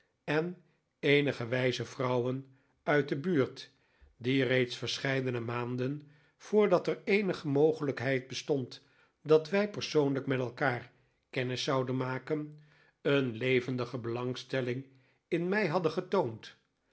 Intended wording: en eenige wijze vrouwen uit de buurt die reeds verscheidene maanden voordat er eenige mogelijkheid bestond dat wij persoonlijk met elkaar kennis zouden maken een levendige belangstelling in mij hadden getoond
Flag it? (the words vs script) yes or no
no